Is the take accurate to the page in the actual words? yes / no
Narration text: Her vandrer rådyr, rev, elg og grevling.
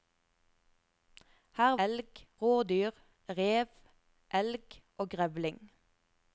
no